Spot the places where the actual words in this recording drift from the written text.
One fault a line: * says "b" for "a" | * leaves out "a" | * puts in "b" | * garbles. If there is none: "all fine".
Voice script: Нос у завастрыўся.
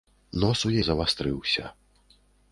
all fine